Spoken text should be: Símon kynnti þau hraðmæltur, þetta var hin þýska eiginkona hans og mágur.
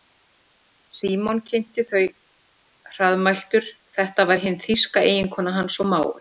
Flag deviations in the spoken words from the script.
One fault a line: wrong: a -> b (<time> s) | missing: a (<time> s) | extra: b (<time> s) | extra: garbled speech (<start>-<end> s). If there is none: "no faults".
no faults